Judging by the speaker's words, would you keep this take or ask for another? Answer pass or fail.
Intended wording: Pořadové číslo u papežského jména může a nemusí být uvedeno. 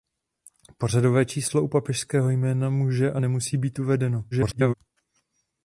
fail